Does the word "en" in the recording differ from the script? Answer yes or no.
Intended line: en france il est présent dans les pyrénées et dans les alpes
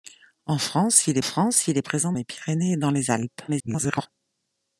no